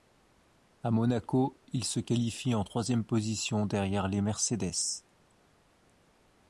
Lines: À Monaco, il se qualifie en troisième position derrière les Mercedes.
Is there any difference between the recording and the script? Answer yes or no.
no